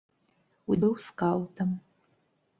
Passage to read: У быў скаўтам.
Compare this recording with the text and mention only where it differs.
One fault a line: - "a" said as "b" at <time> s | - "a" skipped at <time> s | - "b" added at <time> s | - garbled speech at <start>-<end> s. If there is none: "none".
none